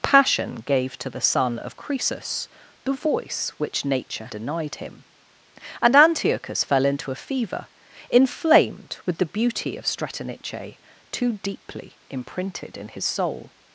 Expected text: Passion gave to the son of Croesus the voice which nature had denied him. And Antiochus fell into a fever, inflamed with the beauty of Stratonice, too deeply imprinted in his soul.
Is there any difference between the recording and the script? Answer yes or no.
yes